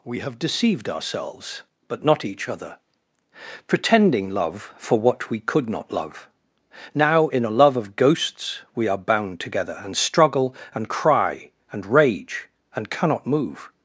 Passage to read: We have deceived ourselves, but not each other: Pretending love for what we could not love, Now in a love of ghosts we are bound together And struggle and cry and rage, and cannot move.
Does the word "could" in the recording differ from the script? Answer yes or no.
no